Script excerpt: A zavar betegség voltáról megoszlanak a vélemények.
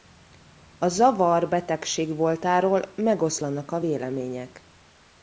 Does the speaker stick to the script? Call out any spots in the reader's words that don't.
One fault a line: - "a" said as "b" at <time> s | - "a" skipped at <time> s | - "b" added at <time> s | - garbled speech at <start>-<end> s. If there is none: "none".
none